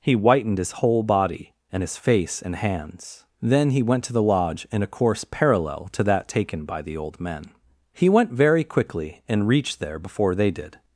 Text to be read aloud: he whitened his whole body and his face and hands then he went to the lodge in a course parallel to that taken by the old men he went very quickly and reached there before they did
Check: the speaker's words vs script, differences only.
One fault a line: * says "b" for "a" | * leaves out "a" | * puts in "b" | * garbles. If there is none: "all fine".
all fine